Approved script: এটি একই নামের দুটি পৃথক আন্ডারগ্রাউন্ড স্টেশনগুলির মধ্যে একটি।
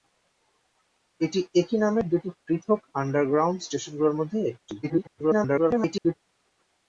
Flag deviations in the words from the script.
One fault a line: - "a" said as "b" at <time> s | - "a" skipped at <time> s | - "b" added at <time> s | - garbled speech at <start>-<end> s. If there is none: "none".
- garbled speech at 4.8-6.2 s